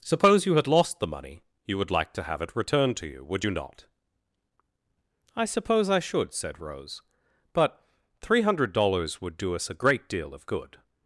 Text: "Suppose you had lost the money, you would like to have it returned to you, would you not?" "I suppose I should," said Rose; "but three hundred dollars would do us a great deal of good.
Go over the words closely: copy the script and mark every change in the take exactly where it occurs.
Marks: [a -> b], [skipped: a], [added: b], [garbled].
"Suppose you had lost the money, you would like to have it returned to you, would you not?" "I suppose I should," said Rose; "but three hundred dollars would do us a great deal of good.